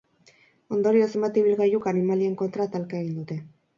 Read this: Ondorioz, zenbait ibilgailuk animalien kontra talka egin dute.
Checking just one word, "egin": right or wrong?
right